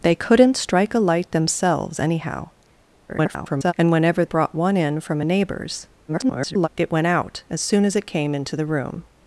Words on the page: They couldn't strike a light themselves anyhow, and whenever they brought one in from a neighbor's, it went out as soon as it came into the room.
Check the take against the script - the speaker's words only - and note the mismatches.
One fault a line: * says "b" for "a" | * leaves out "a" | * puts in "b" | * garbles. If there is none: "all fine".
* garbles
* leaves out "they"
* garbles